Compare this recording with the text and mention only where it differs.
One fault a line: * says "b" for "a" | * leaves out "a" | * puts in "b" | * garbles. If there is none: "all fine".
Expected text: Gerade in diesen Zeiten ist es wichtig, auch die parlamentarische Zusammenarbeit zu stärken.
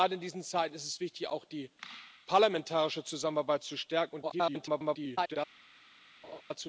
* garbles